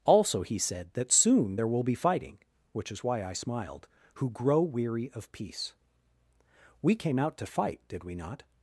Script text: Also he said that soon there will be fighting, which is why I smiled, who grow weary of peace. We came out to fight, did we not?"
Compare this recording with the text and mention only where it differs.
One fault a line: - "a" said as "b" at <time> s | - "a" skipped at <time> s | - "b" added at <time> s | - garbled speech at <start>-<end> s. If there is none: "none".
none